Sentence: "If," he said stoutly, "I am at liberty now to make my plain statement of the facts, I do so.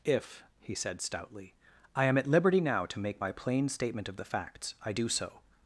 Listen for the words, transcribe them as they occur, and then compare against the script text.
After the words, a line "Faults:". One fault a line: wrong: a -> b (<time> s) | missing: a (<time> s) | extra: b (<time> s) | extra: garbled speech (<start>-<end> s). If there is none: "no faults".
"If," he said stoutly, "I am at liberty now to make my plain statement of the facts, I do so.
Faults:
no faults